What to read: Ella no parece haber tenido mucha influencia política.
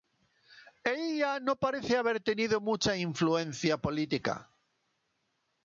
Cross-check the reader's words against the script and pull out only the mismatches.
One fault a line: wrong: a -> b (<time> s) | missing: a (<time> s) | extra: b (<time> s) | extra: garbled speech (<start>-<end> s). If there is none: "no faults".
no faults